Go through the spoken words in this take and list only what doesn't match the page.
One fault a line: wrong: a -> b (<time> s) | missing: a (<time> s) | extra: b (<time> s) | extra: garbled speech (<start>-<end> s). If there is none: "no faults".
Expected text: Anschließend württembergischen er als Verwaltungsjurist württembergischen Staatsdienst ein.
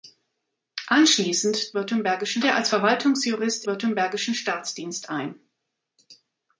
no faults